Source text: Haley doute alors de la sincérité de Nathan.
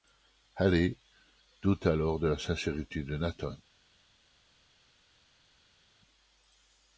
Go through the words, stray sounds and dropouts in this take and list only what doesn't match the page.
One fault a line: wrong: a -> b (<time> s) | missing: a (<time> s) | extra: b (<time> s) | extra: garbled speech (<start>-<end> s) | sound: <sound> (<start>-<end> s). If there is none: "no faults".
no faults